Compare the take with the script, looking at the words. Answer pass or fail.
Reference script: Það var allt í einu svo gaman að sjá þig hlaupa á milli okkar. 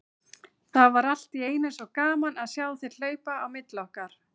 pass